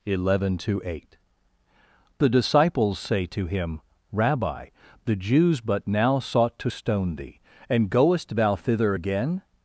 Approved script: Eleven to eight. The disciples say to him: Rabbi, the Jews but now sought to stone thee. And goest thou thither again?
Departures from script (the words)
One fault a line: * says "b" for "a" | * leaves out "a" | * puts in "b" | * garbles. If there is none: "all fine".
all fine